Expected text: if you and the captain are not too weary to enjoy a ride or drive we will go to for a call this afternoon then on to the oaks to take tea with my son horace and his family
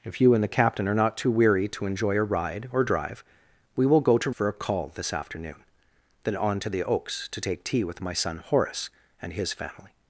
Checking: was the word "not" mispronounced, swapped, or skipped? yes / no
no